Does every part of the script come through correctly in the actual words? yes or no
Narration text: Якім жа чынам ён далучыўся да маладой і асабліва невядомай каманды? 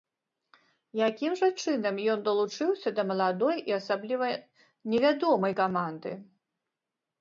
yes